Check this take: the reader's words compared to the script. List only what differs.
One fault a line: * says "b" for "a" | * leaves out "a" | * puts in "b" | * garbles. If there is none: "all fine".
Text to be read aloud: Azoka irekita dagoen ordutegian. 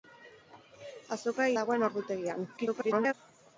* leaves out "irekita"
* garbles